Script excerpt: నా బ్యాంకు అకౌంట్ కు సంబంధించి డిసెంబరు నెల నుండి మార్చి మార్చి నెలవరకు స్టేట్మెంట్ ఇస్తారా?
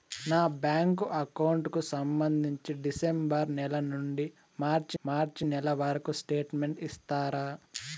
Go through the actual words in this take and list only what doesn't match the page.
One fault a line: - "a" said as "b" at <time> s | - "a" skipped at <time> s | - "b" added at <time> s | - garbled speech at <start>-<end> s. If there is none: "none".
none